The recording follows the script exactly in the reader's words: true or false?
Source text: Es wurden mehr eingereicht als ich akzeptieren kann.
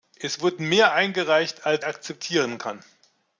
false